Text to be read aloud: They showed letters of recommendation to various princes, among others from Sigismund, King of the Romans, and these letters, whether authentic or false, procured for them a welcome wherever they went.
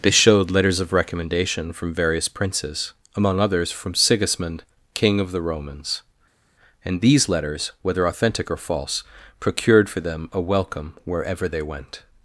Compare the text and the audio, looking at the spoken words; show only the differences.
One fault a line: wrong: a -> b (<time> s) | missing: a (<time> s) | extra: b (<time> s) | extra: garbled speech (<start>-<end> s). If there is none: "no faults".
wrong: to -> from (1.7 s)